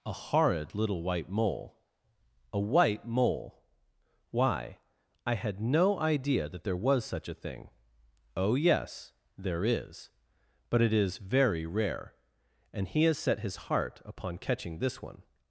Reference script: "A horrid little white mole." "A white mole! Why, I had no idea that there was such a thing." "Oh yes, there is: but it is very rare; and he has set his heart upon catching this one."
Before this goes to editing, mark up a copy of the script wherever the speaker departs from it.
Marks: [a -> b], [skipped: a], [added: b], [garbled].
"A horrid little white mole." "A white mole! Why, I had no idea that there was such a thing." "Oh yes, there is: but it is very rare; and he has set his heart upon catching this one."